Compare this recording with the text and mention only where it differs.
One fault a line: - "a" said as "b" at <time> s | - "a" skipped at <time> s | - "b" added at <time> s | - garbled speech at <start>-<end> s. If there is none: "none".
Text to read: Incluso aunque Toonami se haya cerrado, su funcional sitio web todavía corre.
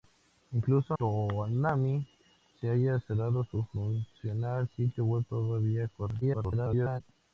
- "aunque" skipped at 0.9 s
- garbled speech at 6.2-7.0 s